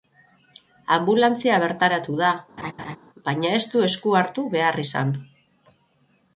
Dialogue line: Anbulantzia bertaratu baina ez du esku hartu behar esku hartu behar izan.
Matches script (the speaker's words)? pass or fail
fail